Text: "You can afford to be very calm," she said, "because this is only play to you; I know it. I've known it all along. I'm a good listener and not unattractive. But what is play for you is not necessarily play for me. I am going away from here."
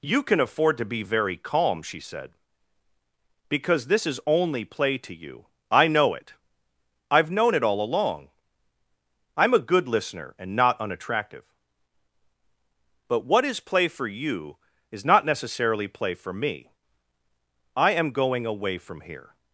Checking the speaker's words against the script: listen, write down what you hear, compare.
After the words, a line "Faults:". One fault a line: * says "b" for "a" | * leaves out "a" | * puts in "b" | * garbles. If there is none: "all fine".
"You can afford to be very calm," she said, "because this is only play to you; I know it. I've known it all along. I'm a good listener and not unattractive. But what is play for you is not necessarily play for me. I am going away from here."
Faults:
all fine